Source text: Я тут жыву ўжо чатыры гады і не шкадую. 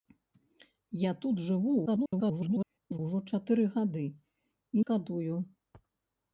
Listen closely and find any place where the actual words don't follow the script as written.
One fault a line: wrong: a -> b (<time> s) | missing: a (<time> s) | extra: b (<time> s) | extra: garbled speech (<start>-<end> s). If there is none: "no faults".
extra: garbled speech (1.9-3.0 s)
missing: не (4.8 s)